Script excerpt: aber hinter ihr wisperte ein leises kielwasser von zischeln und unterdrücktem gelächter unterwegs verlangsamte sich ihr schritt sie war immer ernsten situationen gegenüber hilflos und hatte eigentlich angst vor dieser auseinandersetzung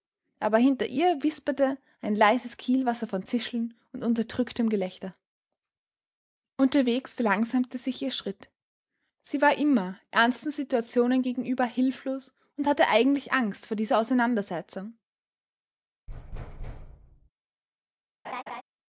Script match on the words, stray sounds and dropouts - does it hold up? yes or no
no